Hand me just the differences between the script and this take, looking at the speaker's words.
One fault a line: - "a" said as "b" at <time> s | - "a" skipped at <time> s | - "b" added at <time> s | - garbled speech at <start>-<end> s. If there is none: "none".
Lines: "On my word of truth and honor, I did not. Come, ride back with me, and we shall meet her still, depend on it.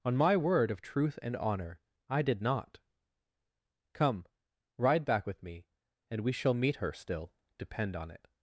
none